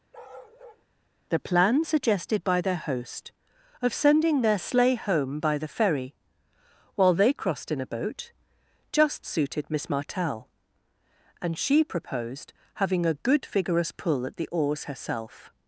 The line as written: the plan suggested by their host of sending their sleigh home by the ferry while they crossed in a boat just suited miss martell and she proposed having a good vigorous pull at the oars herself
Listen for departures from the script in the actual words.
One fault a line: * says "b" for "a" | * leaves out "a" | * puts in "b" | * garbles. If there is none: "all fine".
all fine